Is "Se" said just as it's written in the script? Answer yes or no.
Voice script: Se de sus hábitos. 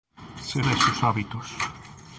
yes